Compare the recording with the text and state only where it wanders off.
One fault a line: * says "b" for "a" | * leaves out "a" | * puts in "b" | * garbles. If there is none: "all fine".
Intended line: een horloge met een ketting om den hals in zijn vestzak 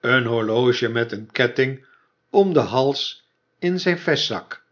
all fine